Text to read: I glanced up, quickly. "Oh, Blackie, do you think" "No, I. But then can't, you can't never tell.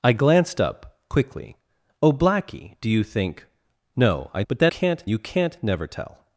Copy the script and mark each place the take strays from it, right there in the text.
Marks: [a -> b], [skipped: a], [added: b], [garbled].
I glanced up, quickly. "Oh, Blackie, do you think" "No, I. But then can't, you can't never tell.